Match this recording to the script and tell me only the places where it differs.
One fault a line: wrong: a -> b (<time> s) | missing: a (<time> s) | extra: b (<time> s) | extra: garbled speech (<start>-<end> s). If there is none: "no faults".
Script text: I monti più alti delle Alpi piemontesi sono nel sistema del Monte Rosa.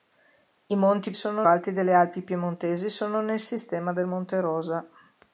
wrong: più -> sono (1.1 s)